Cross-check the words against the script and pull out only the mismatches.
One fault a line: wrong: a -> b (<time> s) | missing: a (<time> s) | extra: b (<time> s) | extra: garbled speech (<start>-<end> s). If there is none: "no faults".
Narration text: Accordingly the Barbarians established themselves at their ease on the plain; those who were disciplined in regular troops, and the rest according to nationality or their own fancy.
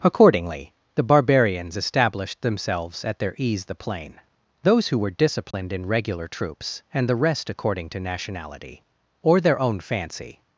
missing: on (3.6 s)